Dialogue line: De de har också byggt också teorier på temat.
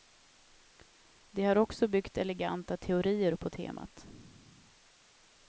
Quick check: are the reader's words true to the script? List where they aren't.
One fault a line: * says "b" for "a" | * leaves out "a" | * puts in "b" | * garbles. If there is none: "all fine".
* leaves out "de"
* says "eleganta" for "också"